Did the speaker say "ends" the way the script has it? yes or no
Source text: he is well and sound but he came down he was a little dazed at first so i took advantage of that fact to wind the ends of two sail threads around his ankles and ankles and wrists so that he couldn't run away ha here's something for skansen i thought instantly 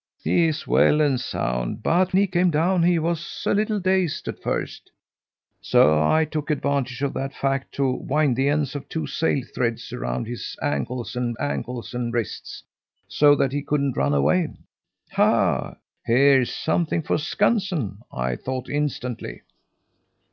yes